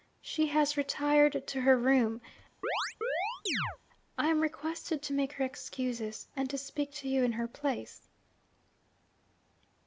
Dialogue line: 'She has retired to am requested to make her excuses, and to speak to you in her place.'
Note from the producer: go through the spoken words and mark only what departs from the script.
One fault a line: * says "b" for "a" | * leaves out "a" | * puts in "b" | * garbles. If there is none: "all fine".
* puts in "her room I"